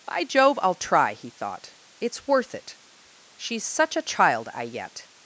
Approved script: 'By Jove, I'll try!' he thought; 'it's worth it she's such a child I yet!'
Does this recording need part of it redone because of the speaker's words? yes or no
no